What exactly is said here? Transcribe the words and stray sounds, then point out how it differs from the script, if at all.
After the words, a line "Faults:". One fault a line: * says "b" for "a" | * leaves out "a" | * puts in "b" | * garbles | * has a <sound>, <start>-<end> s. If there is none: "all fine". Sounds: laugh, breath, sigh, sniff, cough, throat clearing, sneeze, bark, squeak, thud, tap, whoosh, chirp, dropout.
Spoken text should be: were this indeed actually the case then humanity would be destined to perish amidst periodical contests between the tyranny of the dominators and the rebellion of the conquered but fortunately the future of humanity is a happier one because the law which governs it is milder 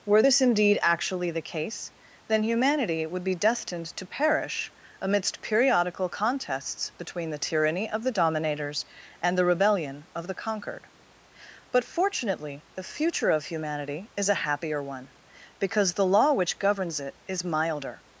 were this indeed actually the case then humanity would be destined to perish amidst periodical contests between the tyranny of the dominators and the rebellion of the conquered but fortunately the future of humanity is a happier one because the law which governs it is milder
Faults:
all fine